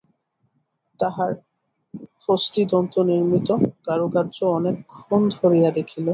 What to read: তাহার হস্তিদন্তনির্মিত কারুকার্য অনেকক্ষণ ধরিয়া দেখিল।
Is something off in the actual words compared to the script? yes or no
no